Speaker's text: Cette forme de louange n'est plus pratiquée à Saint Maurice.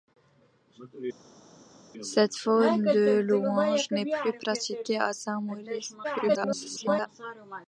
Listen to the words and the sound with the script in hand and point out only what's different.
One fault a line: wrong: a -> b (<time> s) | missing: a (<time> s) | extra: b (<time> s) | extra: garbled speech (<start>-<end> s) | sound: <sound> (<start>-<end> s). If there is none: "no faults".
extra: garbled speech (6.0-7.1 s)